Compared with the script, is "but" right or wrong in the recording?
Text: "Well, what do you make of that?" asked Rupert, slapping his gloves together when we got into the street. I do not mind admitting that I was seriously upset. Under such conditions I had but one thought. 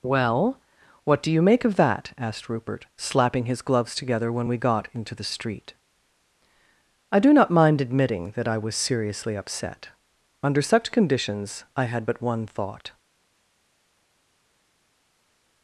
right